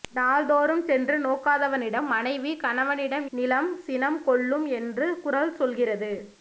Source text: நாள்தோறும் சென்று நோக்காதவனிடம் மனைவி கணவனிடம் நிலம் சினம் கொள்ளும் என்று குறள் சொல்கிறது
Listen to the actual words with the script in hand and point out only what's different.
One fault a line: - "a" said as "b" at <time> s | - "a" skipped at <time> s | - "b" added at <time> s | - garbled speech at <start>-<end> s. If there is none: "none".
none